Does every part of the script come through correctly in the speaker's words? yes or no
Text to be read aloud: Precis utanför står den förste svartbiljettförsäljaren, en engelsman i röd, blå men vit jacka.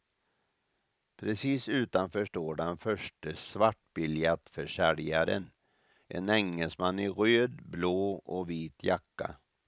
no